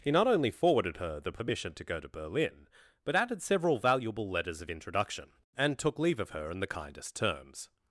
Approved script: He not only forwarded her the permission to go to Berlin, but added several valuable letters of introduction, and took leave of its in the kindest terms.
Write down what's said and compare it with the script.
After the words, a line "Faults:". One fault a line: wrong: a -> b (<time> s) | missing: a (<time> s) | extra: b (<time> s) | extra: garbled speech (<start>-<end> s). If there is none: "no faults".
He not only forwarded her the permission to go to Berlin, but added several valuable letters of introduction, and took leave of her in the kindest terms.
Faults:
wrong: its -> her (6.3 s)